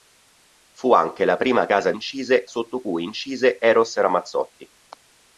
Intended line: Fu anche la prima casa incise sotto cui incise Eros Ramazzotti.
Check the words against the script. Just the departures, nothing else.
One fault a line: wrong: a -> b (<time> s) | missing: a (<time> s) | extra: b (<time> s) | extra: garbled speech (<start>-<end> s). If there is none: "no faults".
no faults